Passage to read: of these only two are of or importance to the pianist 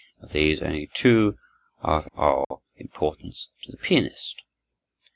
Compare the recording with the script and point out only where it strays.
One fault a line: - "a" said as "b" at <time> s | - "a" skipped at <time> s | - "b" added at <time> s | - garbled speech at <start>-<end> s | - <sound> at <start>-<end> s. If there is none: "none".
- dropout at 2.4-2.5 s